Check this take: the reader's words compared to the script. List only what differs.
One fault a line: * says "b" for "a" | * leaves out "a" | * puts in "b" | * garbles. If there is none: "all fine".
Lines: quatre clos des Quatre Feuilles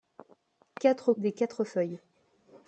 * leaves out "clos"